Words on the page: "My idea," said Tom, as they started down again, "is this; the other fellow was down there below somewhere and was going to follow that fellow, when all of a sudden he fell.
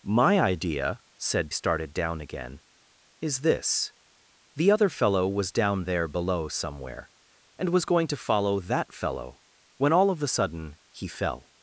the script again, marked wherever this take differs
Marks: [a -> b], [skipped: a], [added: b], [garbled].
"My idea," said [skipped: Tom, as they] started down again, "is this; the other fellow was down there below somewhere and was going to follow that fellow, when all of a sudden he fell.